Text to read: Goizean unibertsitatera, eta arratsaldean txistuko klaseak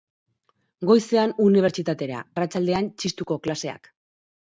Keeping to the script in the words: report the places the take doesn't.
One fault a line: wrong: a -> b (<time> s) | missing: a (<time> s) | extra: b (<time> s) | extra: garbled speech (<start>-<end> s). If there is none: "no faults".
missing: eta (2.2 s)